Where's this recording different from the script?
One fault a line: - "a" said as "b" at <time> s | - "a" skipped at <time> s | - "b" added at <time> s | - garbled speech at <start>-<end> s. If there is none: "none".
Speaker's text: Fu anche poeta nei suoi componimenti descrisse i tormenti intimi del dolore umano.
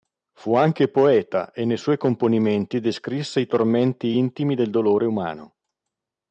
- "e" added at 1.5 s